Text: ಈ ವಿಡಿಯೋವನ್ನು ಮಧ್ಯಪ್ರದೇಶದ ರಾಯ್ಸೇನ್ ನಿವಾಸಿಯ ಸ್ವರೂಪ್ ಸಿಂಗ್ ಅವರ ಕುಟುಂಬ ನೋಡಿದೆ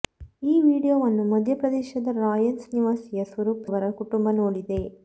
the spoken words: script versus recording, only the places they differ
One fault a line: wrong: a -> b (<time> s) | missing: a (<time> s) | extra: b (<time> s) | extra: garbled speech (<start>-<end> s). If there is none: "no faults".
missing: ಸಿಂಗ್ (3.7 s)